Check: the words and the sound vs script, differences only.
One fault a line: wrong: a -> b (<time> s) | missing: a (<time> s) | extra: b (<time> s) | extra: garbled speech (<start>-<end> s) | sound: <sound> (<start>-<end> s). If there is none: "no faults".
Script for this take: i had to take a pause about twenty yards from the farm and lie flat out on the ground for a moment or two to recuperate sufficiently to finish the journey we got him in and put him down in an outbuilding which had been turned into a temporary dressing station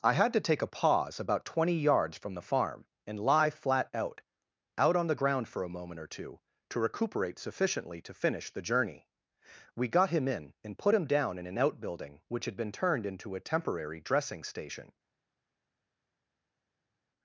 extra: out (4.8 s)